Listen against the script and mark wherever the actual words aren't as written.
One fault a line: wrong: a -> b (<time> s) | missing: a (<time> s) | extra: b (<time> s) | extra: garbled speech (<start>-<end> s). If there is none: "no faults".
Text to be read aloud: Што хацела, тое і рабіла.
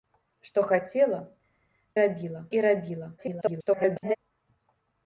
wrong: тое -> рабіла (2.0 s)
extra: garbled speech (3.2-4.2 s)